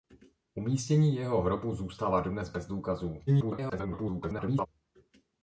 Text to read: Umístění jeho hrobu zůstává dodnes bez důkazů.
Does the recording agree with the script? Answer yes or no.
no